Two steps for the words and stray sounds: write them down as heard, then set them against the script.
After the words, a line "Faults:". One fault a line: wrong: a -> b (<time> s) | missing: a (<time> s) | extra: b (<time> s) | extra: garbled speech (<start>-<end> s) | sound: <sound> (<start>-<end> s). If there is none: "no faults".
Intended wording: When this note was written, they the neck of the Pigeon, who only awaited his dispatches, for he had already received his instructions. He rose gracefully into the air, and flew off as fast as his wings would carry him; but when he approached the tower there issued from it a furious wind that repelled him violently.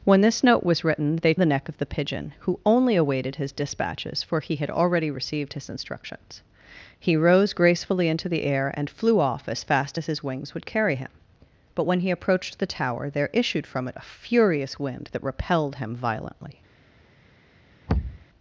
When this note was written, they the neck of the Pigeon, who only awaited his dispatches, for he had already received his instructions. He rose gracefully into the air, and flew off as fast as his wings would carry him; but when he approached the tower there issued from it a furious wind that repelled him violently.
Faults:
sound: thud (17.9-18.3 s)